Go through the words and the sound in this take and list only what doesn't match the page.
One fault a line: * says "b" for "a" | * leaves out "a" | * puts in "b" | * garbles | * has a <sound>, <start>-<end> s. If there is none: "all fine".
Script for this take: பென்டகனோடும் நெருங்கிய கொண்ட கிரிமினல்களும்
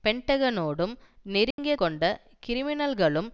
* has a dropout, 1.5-1.6 s